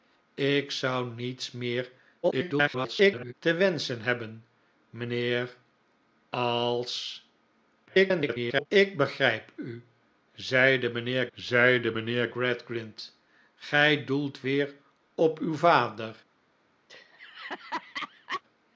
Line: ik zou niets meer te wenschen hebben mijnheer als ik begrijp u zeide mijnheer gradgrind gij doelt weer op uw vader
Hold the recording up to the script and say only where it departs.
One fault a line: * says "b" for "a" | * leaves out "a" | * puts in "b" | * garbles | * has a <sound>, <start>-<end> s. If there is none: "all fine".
* garbles
* garbles
* puts in "zeide mijnheer"
* has a laugh, 16.9-18.4 s